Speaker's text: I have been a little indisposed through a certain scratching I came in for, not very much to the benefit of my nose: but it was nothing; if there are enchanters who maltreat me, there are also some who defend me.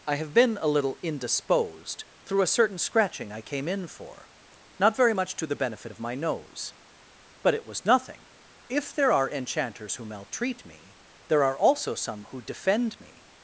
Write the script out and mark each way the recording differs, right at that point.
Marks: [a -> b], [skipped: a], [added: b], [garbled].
I have been a little indisposed through a certain scratching I came in for, not very much to the benefit of my nose: but it was nothing; if there are enchanters who maltreat me, there are also some who defend me.